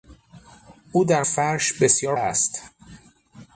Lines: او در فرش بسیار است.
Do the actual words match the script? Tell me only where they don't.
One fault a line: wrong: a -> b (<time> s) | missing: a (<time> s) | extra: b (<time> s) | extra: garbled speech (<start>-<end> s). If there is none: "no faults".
no faults